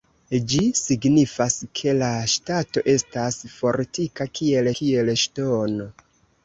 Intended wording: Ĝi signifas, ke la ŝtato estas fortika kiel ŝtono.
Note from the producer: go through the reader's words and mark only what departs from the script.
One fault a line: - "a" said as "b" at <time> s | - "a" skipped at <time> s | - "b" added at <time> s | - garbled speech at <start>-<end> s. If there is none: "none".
- "kiel" added at 4.8 s